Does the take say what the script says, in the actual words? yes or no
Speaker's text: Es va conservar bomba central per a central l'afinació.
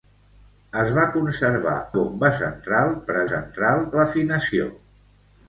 yes